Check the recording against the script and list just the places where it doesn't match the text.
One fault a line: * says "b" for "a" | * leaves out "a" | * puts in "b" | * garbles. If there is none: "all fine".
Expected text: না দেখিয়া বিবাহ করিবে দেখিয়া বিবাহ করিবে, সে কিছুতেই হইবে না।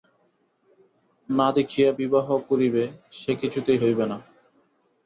* leaves out "দেখিয়া বিবাহ করিবে"